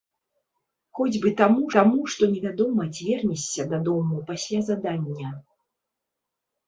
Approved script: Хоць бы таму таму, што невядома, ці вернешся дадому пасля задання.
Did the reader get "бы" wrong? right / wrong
right